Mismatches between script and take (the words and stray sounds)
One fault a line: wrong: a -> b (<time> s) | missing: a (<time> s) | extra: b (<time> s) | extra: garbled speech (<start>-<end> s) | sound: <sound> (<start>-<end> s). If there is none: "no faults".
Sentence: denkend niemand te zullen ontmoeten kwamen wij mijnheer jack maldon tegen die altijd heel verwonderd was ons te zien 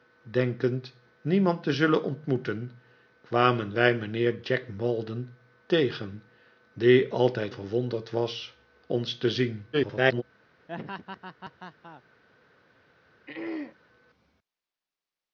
missing: heel (7.5 s)
extra: garbled speech (9.7-10.2 s)
sound: laugh (10.7-12.0 s)
sound: throat clearing (13.3-13.8 s)